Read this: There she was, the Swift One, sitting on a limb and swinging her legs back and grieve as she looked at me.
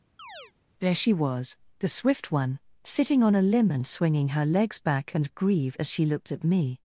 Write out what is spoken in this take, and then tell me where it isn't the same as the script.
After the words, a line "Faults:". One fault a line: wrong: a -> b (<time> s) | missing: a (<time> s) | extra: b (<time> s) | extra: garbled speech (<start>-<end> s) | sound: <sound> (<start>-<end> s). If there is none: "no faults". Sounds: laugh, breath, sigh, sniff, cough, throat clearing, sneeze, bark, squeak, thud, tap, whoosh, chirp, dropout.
There she was, the Swift One, sitting on a limb and swinging her legs back and grieve as she looked at me.
Faults:
sound: chirp (0.2-0.5 s)